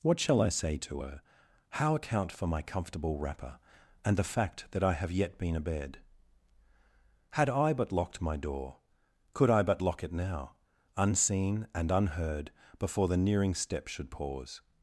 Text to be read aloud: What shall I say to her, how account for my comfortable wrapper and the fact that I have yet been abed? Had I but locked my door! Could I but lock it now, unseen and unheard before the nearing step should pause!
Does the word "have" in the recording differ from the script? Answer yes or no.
no